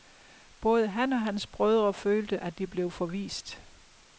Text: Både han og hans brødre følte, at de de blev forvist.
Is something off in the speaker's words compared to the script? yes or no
yes